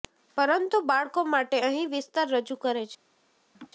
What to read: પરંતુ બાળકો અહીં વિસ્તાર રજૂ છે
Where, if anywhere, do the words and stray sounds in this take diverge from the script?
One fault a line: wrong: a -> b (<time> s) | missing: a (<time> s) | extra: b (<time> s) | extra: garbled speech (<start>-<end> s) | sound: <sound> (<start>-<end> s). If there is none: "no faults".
extra: માટે (1.3 s)
extra: કરે (2.6 s)
sound: laugh (3.5-3.7 s)